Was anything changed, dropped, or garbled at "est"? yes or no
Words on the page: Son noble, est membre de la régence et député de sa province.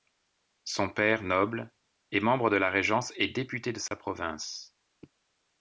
no